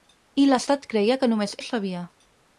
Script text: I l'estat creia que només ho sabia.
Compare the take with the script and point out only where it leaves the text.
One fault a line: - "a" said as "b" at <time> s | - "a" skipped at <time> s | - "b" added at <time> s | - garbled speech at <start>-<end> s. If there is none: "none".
none